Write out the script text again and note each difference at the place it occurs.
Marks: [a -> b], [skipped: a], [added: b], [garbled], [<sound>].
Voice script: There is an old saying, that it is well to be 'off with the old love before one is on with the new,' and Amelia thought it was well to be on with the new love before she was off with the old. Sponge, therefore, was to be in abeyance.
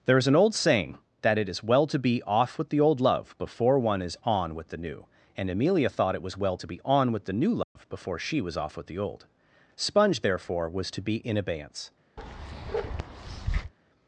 There is an old saying, that it is well to be 'off with the old love before one is on with the new,' and Amelia thought it was well to be on with the new love [dropout] before she was off with the old. Sponge, therefore, was to be in abeyance. [bark]